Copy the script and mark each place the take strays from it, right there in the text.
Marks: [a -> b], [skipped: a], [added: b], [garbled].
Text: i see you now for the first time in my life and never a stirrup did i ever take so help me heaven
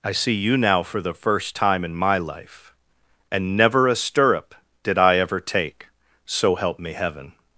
i see you now for the first time in my life and never a stirrup did i ever take so help me heaven